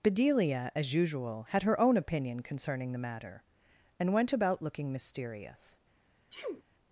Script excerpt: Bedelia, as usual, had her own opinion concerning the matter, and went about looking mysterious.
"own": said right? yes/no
yes